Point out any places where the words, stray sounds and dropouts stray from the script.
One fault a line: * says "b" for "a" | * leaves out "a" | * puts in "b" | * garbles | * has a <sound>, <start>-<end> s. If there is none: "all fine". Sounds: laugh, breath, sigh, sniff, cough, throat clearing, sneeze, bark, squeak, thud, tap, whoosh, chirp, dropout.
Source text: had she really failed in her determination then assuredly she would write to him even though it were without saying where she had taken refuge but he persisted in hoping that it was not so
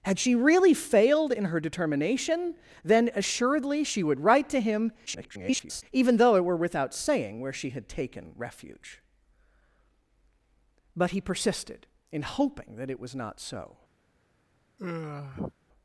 * garbles
* has a sigh, 14.8-15.5 s